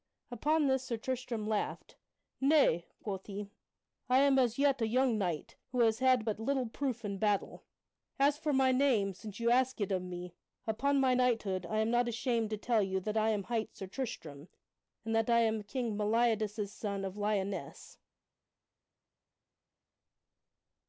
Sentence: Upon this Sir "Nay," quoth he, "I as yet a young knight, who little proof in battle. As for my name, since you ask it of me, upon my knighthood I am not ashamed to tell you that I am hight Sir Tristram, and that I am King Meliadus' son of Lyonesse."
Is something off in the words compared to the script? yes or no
yes